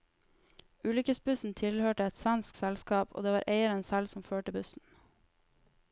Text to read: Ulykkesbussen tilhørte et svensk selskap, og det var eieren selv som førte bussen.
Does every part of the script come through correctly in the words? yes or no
yes